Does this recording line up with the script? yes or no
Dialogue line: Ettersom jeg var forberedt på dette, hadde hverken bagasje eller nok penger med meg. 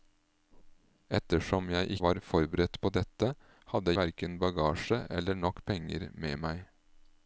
yes